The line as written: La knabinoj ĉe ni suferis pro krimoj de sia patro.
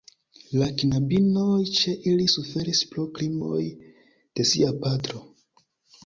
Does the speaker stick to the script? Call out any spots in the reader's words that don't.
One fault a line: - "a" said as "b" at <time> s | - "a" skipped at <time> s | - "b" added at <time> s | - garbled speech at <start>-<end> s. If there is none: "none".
- "ni" said as "ili" at 2.1 s